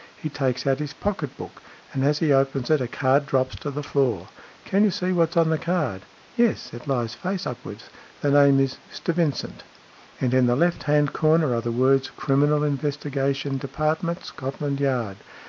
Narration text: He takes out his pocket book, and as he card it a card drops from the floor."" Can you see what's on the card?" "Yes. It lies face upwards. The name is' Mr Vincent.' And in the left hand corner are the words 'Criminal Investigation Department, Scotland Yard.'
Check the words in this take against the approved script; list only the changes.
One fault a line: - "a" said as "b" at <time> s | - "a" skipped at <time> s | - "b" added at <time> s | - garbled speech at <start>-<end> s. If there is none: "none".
- "card" said as "opens" at 2.3 s
- "from" said as "to" at 3.6 s